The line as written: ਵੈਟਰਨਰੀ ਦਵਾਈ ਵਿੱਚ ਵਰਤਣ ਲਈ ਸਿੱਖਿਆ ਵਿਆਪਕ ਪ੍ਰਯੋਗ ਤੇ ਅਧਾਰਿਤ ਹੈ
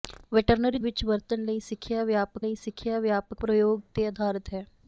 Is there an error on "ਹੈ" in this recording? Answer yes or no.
no